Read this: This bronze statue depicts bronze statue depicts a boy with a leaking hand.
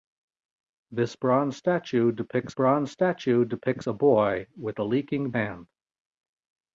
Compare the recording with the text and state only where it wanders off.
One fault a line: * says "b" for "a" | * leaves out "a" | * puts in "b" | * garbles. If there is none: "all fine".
all fine